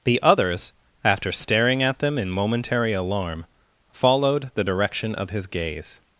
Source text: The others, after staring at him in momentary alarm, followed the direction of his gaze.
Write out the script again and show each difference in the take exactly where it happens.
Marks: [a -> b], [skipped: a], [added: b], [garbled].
The others, after staring at [him -> them] in momentary alarm, followed the direction of his gaze.